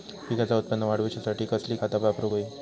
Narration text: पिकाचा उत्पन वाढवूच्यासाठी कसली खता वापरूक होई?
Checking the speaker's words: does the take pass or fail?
pass